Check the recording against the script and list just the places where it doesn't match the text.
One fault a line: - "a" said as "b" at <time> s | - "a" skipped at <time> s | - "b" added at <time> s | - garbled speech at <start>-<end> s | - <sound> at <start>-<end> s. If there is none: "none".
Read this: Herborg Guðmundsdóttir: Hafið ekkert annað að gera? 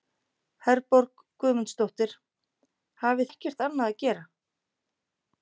none